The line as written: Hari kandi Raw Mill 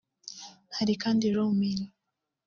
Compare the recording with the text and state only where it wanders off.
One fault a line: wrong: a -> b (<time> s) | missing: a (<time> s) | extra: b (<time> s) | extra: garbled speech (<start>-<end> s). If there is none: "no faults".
no faults